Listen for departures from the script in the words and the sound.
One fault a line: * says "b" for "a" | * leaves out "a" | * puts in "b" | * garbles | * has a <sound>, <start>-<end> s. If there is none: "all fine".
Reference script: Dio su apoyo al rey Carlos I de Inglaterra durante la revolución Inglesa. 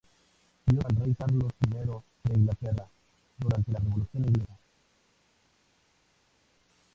* leaves out "su apoyo"